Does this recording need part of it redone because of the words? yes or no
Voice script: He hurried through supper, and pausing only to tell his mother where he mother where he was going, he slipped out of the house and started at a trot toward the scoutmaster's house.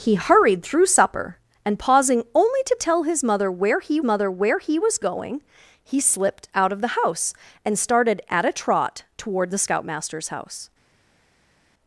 no